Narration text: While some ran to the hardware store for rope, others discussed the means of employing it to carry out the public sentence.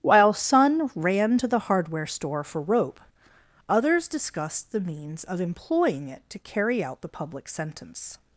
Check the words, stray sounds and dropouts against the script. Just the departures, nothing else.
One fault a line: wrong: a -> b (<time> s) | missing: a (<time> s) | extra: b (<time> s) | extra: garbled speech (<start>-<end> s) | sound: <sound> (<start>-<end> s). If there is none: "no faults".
wrong: some -> sun (0.3 s)